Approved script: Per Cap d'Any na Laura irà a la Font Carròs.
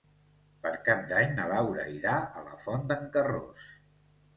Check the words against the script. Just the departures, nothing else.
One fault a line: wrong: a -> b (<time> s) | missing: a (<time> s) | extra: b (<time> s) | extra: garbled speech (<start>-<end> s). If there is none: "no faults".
extra: d'en (2.9 s)